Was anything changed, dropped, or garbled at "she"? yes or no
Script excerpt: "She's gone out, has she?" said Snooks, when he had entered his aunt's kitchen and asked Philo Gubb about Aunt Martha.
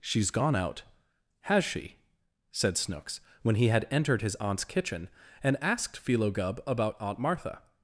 no